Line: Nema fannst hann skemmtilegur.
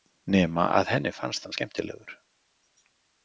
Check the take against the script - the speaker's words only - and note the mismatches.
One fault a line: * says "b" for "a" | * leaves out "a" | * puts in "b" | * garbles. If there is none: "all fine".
* puts in "að henni"